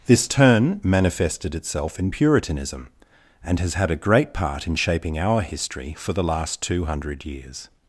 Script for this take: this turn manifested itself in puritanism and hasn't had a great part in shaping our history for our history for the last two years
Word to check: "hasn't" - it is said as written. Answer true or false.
false